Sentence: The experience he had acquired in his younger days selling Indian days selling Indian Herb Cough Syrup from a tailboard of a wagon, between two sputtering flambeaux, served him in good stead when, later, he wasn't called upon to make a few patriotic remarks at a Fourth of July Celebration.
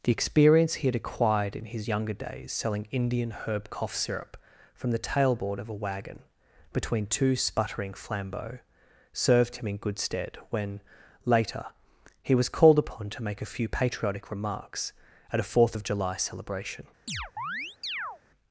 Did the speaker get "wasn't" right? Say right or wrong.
wrong